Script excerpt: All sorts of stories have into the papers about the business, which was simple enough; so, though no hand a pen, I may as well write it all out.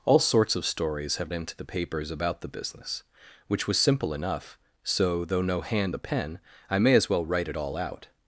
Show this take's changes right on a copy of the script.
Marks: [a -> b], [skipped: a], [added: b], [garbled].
All sorts of stories have into the papers about the business, which was simple enough; so, though no hand a pen, I may as well write it all out.